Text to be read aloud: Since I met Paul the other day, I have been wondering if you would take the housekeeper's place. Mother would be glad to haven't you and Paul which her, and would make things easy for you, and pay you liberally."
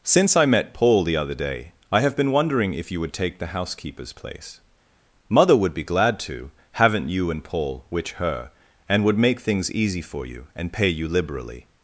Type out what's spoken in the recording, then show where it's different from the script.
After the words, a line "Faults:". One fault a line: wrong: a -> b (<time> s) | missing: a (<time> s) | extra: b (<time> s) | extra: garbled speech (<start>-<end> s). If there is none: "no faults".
Since I met Paul the other day, I have been wondering if you would take the housekeeper's place. Mother would be glad to haven't you and Paul which her, and would make things easy for you, and pay you liberally."
Faults:
no faults